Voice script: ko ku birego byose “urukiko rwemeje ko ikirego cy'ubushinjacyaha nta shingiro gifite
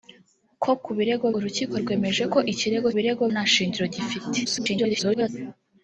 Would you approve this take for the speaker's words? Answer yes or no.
no